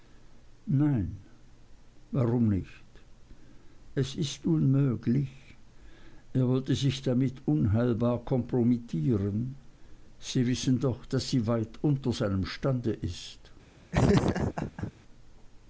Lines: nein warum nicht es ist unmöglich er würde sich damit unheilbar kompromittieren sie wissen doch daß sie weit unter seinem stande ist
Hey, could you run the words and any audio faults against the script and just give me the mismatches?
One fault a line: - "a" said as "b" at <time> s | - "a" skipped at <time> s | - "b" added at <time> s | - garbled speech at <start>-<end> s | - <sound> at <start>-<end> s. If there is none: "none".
- laugh at 13.9-14.9 s